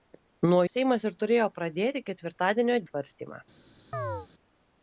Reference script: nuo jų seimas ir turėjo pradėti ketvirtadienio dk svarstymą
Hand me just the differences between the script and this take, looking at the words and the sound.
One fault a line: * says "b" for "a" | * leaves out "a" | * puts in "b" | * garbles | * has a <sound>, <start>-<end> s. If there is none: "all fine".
* leaves out "jų"
* leaves out "dk"
* has a chirp, 3.9-4.3 s